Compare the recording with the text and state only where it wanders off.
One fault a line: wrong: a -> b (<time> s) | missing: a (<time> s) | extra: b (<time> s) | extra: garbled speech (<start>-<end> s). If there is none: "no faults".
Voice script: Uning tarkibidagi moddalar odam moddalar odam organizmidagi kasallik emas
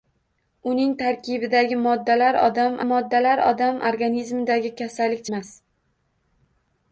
no faults